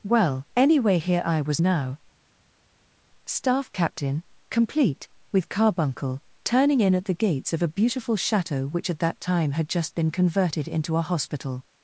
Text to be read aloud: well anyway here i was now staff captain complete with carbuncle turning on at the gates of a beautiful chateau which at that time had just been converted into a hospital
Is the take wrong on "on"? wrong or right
wrong